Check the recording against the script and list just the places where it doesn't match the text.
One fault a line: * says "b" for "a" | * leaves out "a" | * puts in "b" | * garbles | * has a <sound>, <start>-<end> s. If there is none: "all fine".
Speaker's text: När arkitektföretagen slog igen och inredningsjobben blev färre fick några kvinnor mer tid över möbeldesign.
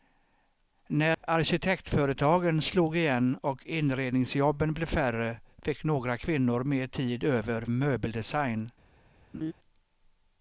* has a dropout, 1.1-1.2 s
* has a laugh, 9.3-9.5 s